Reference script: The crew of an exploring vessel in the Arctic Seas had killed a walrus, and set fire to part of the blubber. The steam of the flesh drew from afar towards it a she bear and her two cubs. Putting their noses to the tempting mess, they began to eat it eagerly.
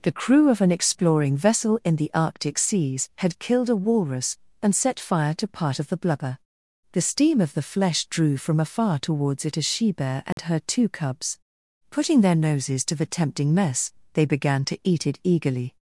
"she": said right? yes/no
yes